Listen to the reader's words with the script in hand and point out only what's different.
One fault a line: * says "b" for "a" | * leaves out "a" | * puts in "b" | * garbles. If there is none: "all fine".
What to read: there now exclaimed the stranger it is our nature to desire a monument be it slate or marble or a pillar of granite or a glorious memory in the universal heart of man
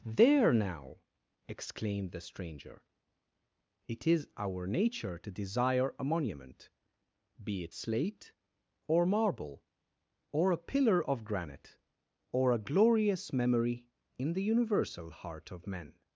* says "men" for "man"